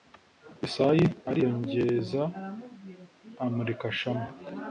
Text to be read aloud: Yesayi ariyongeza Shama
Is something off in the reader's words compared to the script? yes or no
yes